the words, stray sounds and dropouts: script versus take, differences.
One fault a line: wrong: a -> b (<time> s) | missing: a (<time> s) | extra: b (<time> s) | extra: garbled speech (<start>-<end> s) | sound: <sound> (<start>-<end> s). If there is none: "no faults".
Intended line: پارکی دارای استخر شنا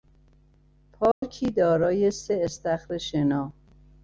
sound: dropout (1.1-1.2 s)
extra: سه (2.1 s)